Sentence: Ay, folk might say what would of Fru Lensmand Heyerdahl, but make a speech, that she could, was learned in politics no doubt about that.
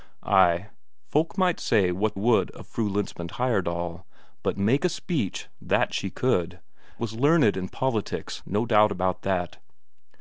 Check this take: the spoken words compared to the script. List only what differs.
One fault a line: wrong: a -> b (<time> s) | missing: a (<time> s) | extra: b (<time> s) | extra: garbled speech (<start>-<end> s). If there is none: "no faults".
no faults